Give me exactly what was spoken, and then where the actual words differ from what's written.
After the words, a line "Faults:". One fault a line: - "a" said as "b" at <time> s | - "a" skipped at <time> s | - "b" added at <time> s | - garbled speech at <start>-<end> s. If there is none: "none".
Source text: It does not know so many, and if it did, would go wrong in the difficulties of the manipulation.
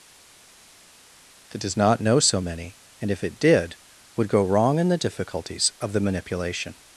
That does not know so many, and if it did, would go wrong in the difficulties of the manipulation.
Faults:
- "It" said as "That" at 1.5 s